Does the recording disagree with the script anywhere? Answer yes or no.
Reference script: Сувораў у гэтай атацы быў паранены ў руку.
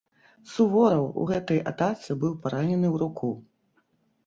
no